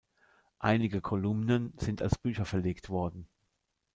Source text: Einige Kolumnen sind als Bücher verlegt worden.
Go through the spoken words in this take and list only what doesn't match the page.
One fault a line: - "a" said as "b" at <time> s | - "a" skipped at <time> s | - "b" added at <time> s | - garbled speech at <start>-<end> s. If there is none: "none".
none